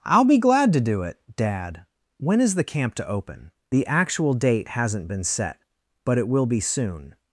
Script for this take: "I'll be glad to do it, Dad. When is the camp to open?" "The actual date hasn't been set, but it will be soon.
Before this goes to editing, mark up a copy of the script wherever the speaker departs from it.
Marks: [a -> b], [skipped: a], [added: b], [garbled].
"I'll be glad to do it, Dad. When is the camp to open?" "The actual date hasn't been set, but it will be soon.